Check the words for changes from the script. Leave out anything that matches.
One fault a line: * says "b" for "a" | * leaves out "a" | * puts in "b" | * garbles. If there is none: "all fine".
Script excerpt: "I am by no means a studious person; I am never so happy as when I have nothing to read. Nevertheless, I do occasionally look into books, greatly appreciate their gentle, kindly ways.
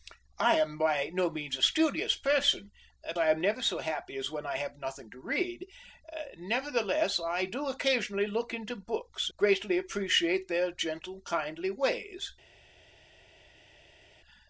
all fine